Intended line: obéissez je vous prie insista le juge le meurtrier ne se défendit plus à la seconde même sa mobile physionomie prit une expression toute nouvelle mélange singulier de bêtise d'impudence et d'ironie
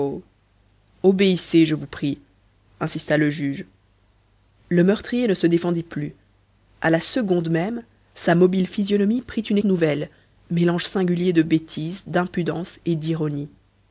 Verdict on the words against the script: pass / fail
fail